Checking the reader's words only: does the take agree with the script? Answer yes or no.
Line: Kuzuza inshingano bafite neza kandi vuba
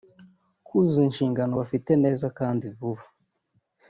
yes